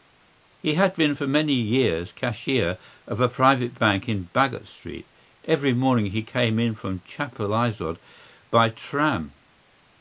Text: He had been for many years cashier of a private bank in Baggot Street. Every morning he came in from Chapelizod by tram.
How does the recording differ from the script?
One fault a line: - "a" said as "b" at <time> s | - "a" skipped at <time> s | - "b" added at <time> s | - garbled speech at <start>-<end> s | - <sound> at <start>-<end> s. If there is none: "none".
none